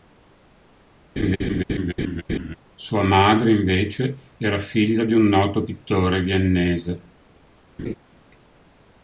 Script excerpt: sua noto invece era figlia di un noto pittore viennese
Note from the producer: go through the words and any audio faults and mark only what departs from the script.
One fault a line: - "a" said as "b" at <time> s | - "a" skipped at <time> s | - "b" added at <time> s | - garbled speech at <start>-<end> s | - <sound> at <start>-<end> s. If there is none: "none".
- laugh at 1.2-2.6 s
- "noto" said as "madre" at 3.0 s
- laugh at 7.8-7.9 s